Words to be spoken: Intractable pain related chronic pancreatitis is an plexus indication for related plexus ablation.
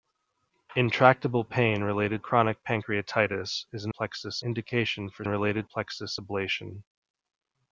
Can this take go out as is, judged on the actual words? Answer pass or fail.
pass